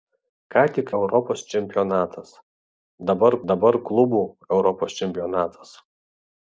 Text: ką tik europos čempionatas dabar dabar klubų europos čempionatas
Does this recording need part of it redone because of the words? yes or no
no